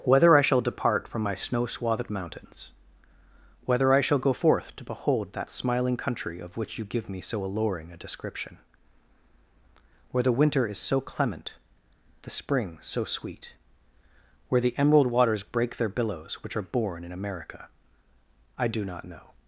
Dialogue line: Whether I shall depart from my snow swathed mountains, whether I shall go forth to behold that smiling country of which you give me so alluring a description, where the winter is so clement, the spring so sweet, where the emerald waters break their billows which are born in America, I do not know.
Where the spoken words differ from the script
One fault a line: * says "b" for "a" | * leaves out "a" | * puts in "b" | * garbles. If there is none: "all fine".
all fine